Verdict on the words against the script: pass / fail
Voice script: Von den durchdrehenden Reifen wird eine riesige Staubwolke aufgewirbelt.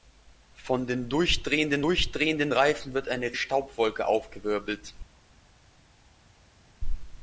fail